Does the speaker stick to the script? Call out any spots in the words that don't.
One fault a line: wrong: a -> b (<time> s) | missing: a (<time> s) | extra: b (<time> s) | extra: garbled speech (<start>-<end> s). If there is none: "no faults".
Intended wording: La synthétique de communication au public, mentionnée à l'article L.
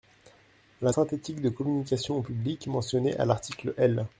no faults